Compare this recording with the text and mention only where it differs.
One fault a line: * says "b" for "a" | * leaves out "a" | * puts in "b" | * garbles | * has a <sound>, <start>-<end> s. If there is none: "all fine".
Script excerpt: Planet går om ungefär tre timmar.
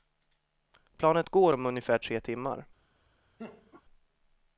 * has a laugh, 3.4-3.8 s